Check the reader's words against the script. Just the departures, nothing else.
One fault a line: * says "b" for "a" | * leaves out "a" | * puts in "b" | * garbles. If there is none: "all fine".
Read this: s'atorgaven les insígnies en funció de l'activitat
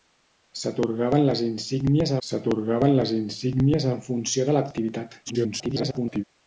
* puts in "s'atorgaven les insígnies"
* garbles